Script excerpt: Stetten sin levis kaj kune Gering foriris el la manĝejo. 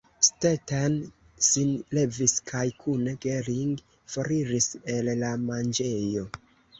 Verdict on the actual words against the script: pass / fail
pass